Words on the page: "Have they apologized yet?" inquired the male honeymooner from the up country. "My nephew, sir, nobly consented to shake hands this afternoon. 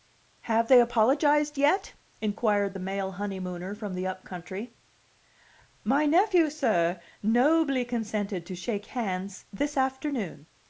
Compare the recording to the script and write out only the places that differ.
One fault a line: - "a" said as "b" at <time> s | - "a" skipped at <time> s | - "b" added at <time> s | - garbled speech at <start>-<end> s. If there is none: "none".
none